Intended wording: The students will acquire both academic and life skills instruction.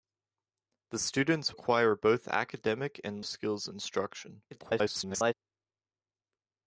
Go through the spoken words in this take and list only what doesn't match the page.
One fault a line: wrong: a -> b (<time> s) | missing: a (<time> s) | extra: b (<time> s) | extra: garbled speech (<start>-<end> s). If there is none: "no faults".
missing: will (1.5 s)
missing: life (3.2 s)
extra: garbled speech (4.5-5.3 s)